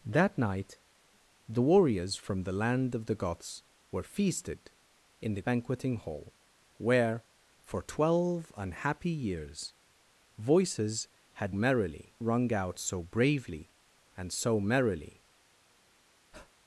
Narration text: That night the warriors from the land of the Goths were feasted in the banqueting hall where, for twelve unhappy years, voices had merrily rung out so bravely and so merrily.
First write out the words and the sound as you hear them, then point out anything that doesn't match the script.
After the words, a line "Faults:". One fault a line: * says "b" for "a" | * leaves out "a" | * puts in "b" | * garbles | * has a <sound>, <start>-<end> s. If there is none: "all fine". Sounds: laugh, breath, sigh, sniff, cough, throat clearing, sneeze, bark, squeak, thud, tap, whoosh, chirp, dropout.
That night the warriors from the land of the Goths were feasted in the banqueting hall where, for twelve unhappy years, voices had merrily rung out so bravely and so merrily.
Faults:
* has a breath, 16.3-16.5 s